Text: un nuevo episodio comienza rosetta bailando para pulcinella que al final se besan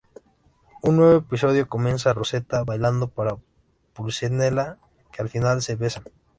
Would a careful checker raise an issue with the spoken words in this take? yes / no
no